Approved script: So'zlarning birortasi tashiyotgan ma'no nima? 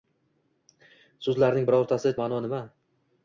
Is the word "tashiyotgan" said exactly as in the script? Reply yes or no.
no